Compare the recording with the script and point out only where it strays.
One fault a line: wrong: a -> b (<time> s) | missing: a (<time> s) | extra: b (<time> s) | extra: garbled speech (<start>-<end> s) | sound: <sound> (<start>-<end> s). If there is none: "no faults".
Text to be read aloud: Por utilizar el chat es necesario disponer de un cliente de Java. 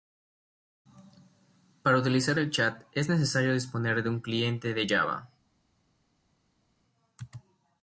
wrong: Por -> Para (1.8 s)